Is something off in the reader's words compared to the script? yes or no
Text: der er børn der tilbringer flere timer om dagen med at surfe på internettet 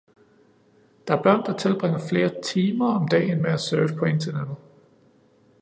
no